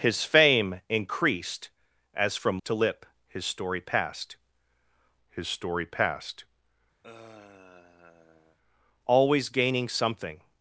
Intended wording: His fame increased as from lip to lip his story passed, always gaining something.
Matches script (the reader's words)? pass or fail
fail